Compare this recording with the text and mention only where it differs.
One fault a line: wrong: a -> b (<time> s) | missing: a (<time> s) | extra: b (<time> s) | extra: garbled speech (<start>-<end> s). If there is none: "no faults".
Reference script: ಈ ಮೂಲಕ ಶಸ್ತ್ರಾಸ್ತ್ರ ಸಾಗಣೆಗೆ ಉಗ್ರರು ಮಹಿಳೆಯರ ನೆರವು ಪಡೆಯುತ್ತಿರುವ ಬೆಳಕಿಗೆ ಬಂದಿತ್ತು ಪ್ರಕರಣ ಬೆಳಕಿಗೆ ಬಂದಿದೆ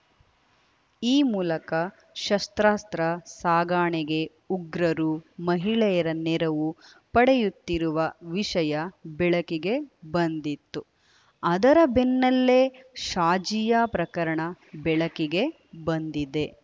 extra: ವಿಷಯ (8.3 s)
extra: ಅದರ ಬೆನ್ನಲ್ಲೇ ಶಾಜಿಯಾ (11.4 s)